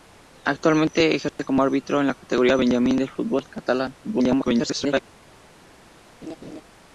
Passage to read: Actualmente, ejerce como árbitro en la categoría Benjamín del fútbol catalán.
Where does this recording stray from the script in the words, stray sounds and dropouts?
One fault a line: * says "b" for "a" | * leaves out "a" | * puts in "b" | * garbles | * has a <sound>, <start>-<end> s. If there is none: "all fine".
* has a dropout, 1.3-1.4 s
* garbles
* has a laugh, 6.2-6.6 s